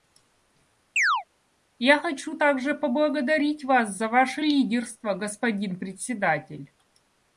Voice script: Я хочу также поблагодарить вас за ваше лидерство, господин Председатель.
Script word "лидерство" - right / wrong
right